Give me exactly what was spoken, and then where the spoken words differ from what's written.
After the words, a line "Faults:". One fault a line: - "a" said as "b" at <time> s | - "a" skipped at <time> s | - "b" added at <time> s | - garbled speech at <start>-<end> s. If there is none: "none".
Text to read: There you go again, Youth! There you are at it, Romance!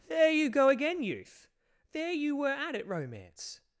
There you go again, Youth! There you were at it, Romance!
Faults:
- "are" said as "were" at 2.4 s